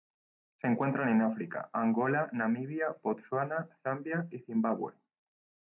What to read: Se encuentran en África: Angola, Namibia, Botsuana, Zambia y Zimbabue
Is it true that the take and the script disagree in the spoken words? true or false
false